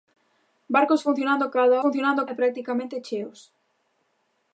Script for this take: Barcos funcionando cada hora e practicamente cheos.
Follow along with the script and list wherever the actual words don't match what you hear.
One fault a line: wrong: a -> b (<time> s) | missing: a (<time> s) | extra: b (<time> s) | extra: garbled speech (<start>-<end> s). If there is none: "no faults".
wrong: hora -> funcionando (1.8 s)